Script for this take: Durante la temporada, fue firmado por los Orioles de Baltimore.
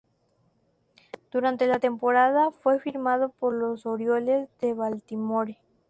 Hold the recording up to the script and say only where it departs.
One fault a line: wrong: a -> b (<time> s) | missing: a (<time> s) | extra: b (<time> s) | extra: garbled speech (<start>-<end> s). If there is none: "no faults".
no faults